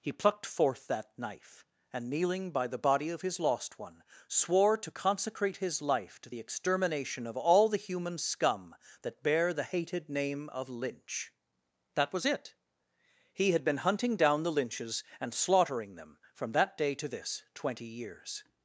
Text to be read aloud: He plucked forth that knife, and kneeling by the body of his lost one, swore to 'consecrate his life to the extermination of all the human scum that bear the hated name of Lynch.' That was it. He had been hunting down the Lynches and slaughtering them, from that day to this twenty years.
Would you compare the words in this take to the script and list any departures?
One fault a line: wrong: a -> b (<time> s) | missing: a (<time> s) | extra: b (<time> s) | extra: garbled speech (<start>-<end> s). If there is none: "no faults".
no faults